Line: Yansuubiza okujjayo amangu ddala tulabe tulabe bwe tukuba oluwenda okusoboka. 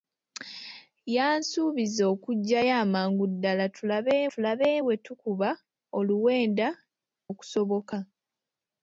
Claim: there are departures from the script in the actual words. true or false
false